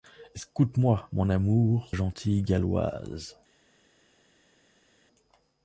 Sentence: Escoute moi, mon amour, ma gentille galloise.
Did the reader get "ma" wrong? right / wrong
wrong